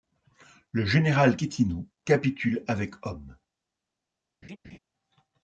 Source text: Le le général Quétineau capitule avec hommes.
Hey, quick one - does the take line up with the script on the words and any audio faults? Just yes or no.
no